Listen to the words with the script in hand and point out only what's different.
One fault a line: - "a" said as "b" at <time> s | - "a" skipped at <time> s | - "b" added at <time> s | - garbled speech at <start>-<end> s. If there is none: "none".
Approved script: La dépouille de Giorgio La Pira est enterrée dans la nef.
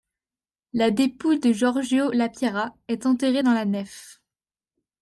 none